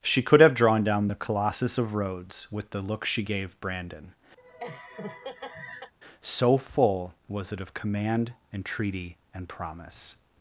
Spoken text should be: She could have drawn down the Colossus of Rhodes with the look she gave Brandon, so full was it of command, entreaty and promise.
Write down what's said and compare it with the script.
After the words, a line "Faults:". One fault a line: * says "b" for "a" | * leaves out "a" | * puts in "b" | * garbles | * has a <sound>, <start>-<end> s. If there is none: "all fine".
She could have drawn down the Colossus of Rhodes with the look she gave Brandon, so full was it of command, entreaty and promise.
Faults:
* has a laugh, 4.4-5.9 s